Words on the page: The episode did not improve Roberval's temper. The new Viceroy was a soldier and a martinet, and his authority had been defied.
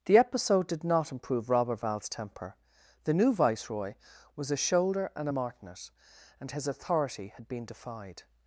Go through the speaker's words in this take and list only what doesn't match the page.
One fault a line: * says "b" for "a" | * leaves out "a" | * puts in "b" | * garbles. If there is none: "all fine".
* says "shoulder" for "soldier"